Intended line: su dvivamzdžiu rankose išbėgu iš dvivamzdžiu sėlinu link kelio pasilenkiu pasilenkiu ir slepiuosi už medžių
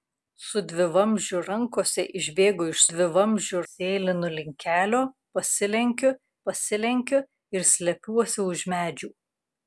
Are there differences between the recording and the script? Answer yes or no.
no